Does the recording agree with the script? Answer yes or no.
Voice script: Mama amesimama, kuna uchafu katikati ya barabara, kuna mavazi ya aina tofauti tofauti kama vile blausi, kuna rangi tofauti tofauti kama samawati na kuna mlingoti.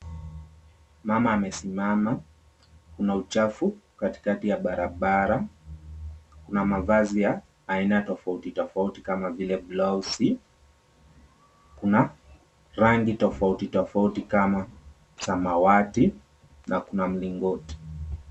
yes